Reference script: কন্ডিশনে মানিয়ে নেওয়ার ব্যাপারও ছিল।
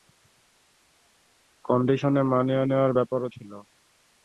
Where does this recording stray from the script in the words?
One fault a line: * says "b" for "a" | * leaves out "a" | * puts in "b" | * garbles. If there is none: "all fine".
all fine